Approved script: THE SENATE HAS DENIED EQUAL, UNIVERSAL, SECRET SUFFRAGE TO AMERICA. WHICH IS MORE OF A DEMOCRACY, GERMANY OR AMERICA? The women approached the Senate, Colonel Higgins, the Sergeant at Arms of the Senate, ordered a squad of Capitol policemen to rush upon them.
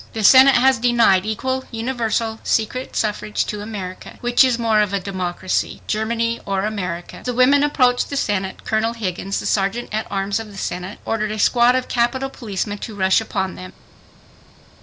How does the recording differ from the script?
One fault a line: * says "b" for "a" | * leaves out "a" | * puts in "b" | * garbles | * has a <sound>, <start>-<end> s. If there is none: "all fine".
all fine